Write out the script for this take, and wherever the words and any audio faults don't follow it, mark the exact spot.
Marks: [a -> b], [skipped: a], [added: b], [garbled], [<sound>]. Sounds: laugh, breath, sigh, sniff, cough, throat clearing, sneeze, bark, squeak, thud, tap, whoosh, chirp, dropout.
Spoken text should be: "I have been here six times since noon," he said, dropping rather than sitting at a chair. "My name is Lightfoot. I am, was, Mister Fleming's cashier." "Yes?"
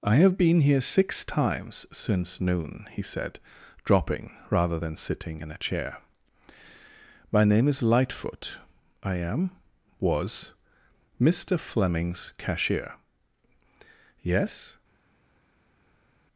"I have been here six times since noon," he said, dropping rather than sitting [at -> in] a chair. "My name is Lightfoot. I am, was, Mister Fleming's cashier." "Yes?"